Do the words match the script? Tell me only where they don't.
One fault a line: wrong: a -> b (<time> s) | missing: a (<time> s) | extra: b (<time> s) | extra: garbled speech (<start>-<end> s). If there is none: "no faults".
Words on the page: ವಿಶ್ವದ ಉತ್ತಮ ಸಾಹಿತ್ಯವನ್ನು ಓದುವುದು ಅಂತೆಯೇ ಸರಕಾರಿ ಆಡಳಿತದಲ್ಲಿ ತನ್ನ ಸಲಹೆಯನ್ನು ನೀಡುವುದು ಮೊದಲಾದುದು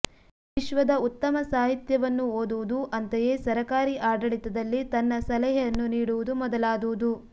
no faults